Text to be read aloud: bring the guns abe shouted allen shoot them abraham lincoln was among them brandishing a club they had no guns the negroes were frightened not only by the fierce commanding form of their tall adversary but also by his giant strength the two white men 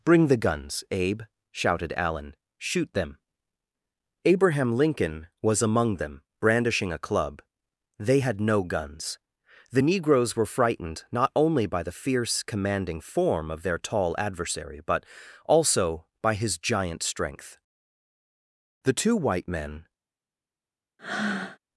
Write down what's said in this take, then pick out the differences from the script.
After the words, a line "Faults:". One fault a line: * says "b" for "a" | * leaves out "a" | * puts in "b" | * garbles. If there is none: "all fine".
bring the guns abe shouted allen shoot them abraham lincoln was among them brandishing a club they had no guns the negroes were frightened not only by the fierce commanding form of their tall adversary but also by his giant strength the two white men
Faults:
all fine